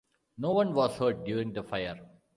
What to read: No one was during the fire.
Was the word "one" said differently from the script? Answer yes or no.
no